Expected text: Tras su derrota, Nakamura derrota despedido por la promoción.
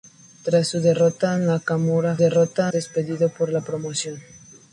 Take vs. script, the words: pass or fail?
pass